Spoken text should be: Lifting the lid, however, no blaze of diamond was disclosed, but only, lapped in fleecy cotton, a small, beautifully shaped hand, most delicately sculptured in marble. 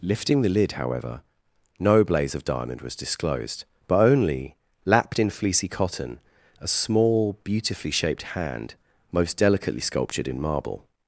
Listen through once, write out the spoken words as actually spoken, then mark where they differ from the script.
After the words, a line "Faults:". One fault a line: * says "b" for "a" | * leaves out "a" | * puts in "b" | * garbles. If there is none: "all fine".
Lifting the lid, however, no blaze of diamond was disclosed, but only, lapped in fleecy cotton, a small, beautifully shaped hand, most delicately sculptured in marble.
Faults:
all fine